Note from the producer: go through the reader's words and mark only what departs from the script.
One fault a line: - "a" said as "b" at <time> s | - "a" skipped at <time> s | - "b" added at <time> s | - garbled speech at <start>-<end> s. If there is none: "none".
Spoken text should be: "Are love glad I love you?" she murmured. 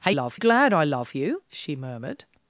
none